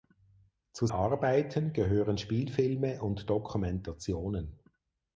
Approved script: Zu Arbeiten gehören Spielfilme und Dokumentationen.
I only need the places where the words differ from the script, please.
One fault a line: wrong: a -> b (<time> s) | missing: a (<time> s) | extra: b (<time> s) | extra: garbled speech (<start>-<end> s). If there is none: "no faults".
no faults